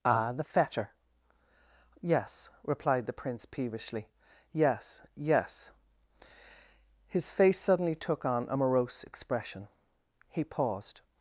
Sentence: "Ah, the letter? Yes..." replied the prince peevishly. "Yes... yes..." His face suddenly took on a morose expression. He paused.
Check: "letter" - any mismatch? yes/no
yes